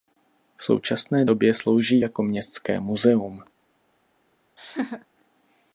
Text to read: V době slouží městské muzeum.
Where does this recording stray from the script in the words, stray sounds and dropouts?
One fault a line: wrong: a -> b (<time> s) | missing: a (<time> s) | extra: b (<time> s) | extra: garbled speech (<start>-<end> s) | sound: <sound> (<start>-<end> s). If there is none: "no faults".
extra: současné (0.6 s)
extra: jako (2.0 s)
sound: laugh (4.6-5.1 s)